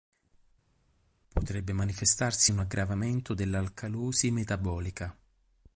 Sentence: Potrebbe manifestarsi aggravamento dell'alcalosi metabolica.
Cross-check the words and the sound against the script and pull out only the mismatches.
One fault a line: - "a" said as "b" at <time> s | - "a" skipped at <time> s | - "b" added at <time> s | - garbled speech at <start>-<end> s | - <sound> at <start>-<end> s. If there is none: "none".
- "un" added at 2.5 s